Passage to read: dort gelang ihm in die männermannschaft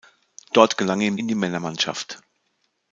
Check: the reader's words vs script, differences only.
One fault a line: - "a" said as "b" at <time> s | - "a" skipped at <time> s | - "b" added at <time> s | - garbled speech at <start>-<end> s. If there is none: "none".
none